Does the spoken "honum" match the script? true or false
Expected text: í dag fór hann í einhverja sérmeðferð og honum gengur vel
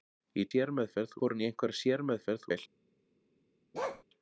false